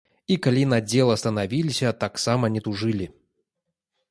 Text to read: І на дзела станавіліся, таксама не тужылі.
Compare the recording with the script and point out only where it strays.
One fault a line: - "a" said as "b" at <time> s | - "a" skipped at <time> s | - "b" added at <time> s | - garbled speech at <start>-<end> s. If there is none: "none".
- "калі" added at 0.5 s